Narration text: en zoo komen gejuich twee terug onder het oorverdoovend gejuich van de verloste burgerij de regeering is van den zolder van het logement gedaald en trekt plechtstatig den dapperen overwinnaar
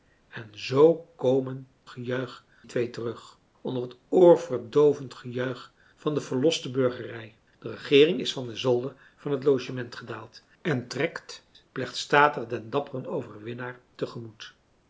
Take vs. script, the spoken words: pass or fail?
pass